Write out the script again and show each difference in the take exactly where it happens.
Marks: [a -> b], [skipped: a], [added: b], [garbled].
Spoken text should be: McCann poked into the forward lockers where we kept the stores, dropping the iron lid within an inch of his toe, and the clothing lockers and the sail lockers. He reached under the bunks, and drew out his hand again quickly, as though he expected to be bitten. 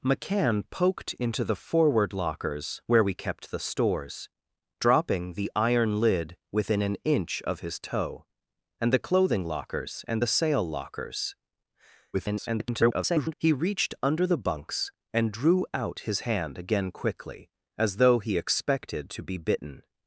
McCann poked into the forward lockers where we kept the stores, dropping the iron lid within an inch of his toe, and the clothing lockers and the sail lockers. [garbled] He reached under the bunks, and drew out his hand again quickly, as though he expected to be bitten.